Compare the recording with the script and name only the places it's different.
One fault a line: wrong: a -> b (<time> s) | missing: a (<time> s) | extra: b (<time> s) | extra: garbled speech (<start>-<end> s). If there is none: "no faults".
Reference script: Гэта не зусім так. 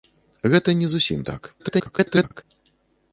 extra: garbled speech (1.6-2.4 s)